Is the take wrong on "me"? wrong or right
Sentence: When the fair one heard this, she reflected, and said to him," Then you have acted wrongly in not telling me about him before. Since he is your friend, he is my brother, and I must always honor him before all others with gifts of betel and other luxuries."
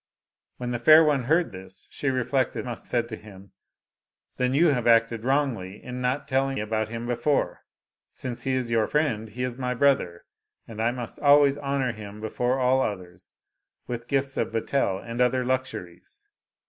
wrong